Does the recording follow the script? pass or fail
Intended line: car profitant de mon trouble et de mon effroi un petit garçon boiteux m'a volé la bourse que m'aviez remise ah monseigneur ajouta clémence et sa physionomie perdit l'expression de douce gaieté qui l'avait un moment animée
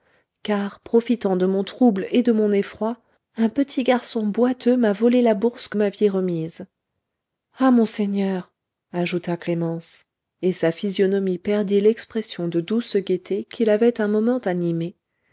pass